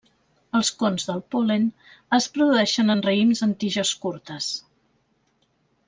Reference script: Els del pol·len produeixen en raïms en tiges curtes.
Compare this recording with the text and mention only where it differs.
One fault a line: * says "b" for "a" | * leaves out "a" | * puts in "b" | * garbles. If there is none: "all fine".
* puts in "cons"
* puts in "es"